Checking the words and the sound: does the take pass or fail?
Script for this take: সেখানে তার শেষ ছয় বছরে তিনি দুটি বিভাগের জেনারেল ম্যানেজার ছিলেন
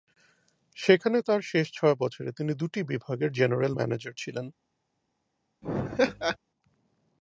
fail